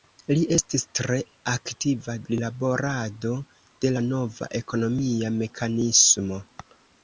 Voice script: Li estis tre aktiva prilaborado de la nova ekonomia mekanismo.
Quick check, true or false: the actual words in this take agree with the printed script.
true